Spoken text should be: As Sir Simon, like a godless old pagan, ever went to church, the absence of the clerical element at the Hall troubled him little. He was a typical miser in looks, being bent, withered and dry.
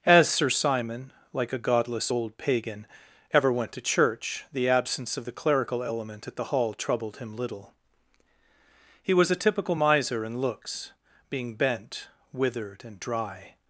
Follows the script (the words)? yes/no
yes